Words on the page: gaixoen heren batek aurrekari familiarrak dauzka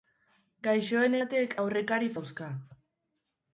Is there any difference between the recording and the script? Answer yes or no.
yes